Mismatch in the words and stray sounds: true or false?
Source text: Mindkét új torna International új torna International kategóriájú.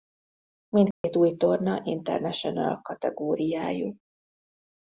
true